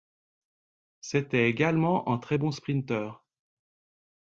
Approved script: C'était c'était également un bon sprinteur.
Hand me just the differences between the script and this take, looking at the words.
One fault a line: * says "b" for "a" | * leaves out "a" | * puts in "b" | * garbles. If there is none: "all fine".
* leaves out "c'était"
* puts in "très"